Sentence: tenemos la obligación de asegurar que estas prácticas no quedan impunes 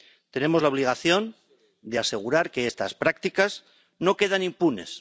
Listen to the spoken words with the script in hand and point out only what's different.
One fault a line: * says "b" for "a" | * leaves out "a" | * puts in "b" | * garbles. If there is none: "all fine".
all fine